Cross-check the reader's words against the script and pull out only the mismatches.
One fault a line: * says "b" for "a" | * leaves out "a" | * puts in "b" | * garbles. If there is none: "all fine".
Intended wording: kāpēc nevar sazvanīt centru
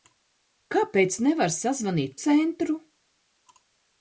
all fine